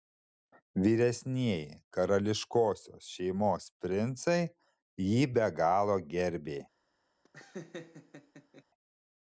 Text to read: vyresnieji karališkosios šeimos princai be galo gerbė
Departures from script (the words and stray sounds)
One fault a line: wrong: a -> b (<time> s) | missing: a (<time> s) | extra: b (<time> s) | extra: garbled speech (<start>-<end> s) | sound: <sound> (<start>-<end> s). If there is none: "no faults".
extra: jį (5.1 s)
sound: laugh (7.2-8.6 s)